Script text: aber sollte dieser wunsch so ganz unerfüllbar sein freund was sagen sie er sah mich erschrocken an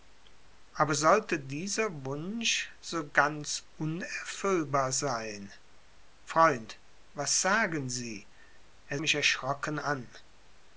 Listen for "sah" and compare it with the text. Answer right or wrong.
wrong